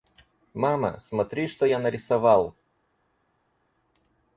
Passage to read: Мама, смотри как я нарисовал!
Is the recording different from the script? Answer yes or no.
yes